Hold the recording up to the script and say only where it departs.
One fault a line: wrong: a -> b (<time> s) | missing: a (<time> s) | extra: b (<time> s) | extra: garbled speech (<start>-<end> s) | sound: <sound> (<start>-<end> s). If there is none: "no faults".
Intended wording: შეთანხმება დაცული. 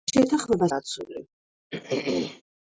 sound: throat clearing (1.7-2.4 s)